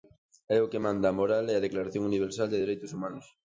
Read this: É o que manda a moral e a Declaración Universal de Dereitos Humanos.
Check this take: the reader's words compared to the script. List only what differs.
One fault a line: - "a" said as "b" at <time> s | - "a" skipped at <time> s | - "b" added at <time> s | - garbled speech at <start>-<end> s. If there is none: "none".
none